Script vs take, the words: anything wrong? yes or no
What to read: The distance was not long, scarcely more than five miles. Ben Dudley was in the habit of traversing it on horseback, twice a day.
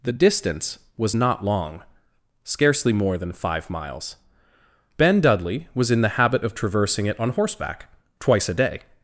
no